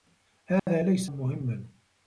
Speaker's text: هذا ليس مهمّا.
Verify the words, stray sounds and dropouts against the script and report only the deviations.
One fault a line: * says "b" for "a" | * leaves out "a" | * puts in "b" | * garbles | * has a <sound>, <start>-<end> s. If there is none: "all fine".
* has a dropout, 0.6-0.7 s